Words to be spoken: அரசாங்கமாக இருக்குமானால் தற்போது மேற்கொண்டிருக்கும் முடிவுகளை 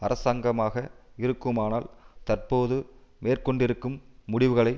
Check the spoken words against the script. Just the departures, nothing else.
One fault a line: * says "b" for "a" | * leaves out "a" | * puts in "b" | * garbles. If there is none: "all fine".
all fine